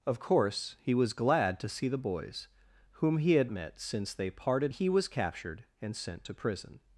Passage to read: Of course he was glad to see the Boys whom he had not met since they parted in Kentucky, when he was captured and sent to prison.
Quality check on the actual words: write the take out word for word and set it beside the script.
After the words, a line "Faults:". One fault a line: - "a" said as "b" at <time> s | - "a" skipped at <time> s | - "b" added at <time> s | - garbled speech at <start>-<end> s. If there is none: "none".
Of course he was glad to see the Boys whom he had met since they parted he was captured and sent to prison.
Faults:
- "not" skipped at 3.5 s
- "in Kentucky when" skipped at 4.7 s